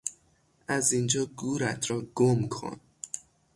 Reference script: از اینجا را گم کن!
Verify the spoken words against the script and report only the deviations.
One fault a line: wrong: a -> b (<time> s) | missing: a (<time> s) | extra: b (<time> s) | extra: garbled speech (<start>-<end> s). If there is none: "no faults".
extra: گورت (1.2 s)